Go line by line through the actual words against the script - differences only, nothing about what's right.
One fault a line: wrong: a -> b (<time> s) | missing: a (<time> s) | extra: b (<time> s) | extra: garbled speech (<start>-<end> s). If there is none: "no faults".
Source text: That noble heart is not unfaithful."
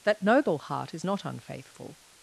no faults